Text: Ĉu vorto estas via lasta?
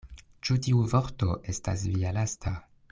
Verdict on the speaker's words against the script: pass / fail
fail